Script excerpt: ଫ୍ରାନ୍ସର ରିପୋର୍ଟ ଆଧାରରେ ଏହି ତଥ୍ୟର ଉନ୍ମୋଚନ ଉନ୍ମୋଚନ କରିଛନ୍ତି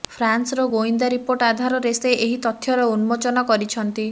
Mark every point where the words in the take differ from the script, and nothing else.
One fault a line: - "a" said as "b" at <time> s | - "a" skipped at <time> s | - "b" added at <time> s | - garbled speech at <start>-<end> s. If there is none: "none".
- "ଗୋଇନ୍ଦା" added at 0.7 s
- "ସେ" added at 2.0 s
- "ଉନ୍ମୋଚନ" skipped at 3.5 s